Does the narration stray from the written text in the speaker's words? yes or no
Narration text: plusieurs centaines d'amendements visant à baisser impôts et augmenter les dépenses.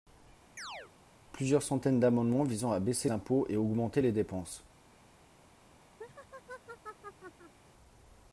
no